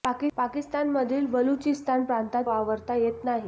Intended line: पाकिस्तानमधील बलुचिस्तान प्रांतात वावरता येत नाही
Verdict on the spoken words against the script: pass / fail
pass